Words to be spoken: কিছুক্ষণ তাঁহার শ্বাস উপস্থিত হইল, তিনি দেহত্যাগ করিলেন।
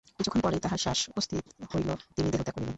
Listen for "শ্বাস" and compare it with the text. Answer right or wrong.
right